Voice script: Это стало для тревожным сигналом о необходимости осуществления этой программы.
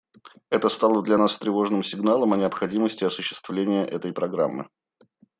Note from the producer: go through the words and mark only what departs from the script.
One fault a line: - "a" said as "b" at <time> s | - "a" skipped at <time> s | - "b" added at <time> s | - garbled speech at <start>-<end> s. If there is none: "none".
- "нас" added at 1.2 s